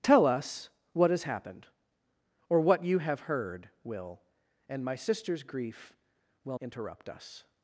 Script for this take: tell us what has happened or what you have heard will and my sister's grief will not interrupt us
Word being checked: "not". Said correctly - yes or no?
no